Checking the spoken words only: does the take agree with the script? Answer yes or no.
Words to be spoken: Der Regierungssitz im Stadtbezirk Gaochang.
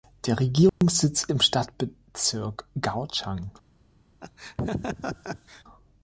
yes